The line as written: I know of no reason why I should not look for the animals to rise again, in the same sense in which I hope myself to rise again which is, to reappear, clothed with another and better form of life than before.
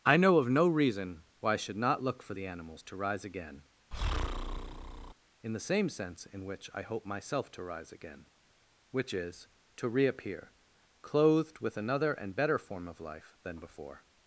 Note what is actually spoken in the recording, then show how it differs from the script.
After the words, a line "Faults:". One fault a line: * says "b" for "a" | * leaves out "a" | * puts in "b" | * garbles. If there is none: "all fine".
I know of no reason why I should not look for the animals to rise again, in the same sense in which I hope myself to rise again which is, to reappear, clothed with another and better form of life than before.
Faults:
all fine